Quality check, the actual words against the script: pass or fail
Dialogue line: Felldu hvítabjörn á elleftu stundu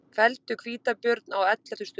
pass